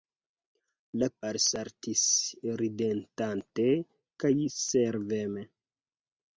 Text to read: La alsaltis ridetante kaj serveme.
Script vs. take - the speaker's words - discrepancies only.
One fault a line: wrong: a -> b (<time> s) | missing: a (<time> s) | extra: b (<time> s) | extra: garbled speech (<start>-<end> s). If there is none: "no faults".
no faults